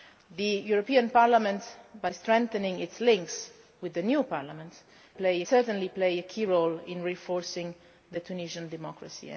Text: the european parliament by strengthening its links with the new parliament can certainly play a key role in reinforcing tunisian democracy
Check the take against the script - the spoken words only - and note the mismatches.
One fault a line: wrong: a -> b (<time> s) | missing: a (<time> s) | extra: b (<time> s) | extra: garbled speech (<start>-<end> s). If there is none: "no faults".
wrong: can -> play (5.1 s)